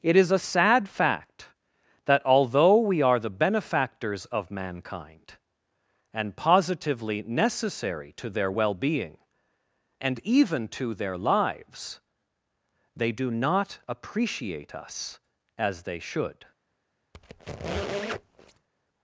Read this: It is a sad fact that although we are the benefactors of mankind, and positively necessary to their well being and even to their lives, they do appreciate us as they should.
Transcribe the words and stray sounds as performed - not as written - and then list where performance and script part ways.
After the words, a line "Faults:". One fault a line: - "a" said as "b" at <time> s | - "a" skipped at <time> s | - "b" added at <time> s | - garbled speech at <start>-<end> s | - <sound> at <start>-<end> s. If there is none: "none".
It is a sad fact that although we are the benefactors of mankind, and positively necessary to their well being and even to their lives, they do not appreciate us as they should.
Faults:
- "not" added at 13.3 s
- squeak at 17.1-18.7 s